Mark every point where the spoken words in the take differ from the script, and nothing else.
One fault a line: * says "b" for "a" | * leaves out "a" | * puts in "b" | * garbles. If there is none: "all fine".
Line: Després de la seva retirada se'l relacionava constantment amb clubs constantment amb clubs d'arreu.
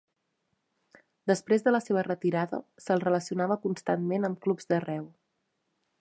* leaves out "constantment amb clubs"